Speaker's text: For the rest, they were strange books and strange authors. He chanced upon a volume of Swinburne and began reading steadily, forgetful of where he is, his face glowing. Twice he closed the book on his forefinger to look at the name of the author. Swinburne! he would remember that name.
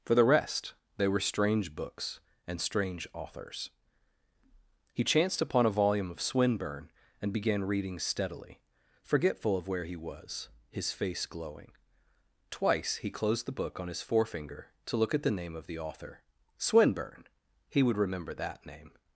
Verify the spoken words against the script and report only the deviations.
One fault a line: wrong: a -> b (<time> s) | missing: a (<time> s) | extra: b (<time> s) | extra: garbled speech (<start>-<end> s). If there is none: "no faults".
wrong: is -> was (9.9 s)